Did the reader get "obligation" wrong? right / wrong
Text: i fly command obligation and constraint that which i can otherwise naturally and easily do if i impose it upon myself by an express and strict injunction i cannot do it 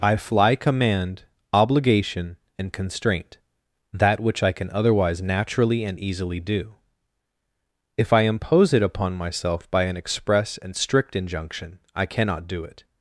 right